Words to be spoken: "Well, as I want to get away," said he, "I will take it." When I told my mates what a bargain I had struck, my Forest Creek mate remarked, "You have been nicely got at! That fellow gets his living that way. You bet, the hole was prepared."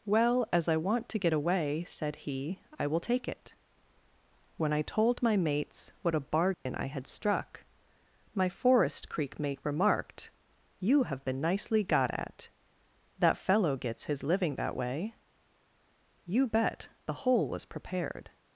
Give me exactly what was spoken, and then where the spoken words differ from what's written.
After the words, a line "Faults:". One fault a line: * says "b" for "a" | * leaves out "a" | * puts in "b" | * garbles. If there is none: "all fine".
"Well, as I want to get away," said he, "I will take it." When I told my mates what a bargain I had struck, my Forest Creek mate remarked, "You have been nicely got at! That fellow gets his living that way. You bet, the hole was prepared."
Faults:
all fine